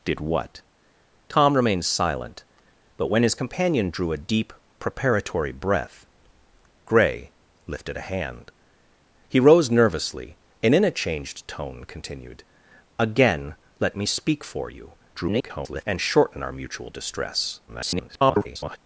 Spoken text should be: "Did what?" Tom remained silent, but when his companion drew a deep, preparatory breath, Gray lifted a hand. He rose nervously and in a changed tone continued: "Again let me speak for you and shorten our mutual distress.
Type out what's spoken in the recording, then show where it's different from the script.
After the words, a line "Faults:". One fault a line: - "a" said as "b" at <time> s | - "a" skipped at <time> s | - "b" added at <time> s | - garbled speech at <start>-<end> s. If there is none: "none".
"Did what?" Tom remained silent, but when his companion drew a deep, preparatory breath, Gray lifted a hand. He rose nervously and in a changed tone continued: "Again let me speak for you [garbled] and shorten our mutual distress. [garbled]
Faults:
- garbled speech at 15.1-15.8 s
- garbled speech at 17.7-18.8 s